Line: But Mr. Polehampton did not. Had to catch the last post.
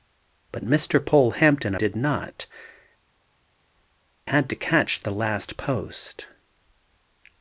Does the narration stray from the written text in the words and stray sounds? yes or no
no